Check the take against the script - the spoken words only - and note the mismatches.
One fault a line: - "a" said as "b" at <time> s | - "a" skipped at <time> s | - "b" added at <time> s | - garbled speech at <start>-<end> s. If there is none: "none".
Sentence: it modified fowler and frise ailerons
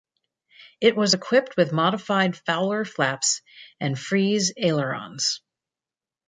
- "was equipped with" added at 0.9 s
- "flaps" added at 2.8 s